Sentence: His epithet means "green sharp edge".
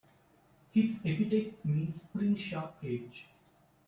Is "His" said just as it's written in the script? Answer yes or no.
yes